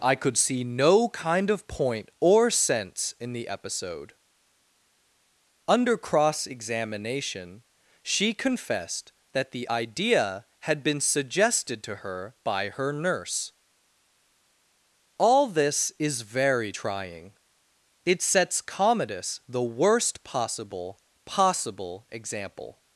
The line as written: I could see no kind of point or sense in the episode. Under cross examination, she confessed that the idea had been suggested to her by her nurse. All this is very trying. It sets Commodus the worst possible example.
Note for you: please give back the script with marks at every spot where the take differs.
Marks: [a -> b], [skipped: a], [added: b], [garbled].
I could see no kind of point or sense in the episode. Under cross examination, she confessed that the idea had been suggested to her by her nurse. All this is very trying. It sets Commodus the worst possible [added: possible] example.